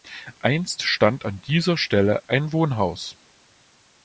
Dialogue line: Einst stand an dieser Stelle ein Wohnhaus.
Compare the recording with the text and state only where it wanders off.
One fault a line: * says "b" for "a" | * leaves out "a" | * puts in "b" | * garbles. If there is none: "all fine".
all fine